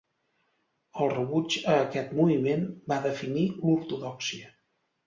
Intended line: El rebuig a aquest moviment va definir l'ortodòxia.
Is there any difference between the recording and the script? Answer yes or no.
no